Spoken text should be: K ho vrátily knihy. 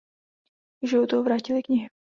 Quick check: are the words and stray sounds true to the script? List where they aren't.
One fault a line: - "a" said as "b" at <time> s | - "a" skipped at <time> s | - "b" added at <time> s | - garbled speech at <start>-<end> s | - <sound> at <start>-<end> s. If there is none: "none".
- "životu" added at 0.9 s